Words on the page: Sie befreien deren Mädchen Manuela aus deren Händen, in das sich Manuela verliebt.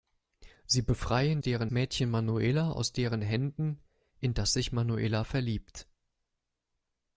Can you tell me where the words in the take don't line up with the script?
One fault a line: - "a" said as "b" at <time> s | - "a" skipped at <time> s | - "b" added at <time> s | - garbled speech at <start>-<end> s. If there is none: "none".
none